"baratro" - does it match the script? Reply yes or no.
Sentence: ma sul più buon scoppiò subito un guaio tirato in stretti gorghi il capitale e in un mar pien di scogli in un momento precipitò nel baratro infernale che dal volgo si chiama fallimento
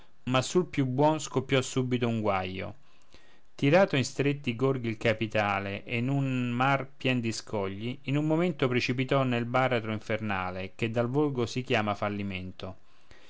yes